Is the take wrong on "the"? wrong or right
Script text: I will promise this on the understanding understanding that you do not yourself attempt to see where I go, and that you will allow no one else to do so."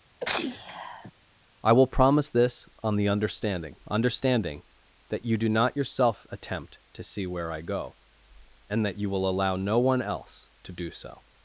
right